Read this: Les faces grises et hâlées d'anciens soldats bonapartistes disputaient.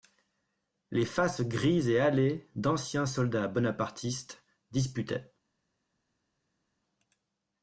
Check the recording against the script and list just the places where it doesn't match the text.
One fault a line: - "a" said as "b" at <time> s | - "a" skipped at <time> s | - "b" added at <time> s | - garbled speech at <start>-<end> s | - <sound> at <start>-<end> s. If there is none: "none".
none